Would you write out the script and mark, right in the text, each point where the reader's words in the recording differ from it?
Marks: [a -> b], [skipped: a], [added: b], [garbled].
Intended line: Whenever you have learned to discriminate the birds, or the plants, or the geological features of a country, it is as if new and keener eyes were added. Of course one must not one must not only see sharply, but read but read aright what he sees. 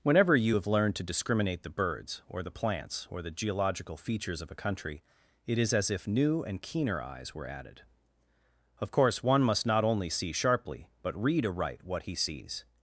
Whenever you have learned to discriminate the birds, or the plants, or the geological features of a country, it is as if new and keener eyes were added. Of course one must not [skipped: one must not] only see sharply, but read [skipped: but read] aright what he sees.